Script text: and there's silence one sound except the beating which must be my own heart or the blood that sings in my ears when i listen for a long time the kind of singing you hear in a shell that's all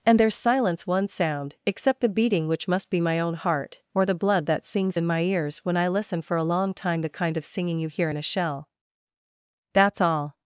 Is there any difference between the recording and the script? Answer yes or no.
no